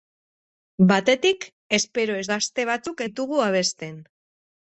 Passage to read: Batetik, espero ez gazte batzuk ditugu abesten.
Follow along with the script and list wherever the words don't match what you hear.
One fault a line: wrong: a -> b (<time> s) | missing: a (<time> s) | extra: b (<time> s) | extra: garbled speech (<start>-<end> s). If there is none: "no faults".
no faults